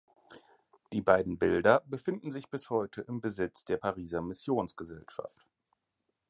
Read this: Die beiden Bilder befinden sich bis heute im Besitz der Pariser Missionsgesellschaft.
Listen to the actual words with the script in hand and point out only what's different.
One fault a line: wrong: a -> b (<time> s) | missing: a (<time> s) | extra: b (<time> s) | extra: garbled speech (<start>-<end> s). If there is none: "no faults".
no faults